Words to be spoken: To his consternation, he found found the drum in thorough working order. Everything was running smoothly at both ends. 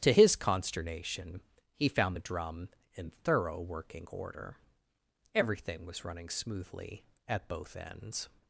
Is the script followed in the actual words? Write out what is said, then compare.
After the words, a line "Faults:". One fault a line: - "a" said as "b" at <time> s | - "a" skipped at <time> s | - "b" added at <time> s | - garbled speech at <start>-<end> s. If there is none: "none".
To his consternation, he found the drum in thorough working order. Everything was running smoothly at both ends.
Faults:
- "found" skipped at 2.2 s